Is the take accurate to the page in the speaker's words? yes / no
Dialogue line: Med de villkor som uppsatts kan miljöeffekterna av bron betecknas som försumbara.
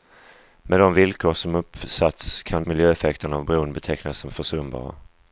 yes